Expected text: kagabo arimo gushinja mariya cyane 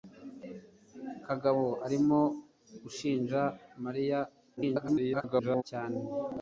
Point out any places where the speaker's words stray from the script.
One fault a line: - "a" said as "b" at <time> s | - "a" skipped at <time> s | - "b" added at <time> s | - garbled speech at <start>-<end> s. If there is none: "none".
- garbled speech at 4.6-5.6 s